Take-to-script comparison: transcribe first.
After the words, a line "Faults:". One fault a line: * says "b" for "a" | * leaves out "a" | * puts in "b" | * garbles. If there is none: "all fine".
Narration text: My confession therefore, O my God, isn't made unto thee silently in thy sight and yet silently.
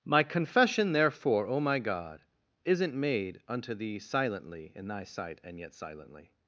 My confession therefore, O my God, isn't made unto thee silently in thy sight and yet silently.
Faults:
all fine